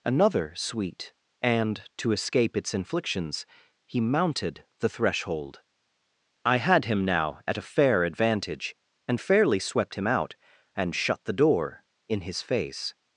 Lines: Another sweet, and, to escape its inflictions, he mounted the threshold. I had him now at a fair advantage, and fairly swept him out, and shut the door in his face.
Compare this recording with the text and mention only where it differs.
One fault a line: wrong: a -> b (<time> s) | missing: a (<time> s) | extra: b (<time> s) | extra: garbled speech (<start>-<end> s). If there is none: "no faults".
no faults